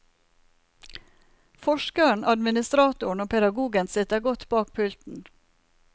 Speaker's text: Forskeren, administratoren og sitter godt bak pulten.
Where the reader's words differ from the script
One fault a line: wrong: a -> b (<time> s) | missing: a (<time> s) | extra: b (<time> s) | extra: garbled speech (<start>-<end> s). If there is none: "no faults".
extra: pedagogen (3.3 s)